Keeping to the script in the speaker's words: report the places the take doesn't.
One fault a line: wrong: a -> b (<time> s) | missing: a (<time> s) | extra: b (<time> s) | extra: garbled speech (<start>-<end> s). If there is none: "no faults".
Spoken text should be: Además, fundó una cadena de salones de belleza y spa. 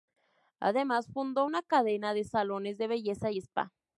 no faults